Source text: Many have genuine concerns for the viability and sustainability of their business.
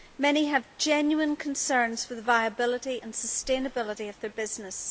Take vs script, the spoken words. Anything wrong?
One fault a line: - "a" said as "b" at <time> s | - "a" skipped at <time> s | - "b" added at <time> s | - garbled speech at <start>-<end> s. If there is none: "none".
none